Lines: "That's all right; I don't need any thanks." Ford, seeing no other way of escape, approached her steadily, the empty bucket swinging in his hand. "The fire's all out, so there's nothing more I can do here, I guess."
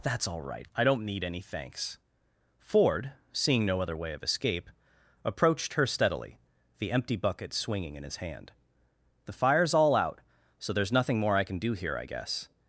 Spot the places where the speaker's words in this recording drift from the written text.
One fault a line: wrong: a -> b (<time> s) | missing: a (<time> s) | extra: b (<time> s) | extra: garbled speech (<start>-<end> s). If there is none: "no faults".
no faults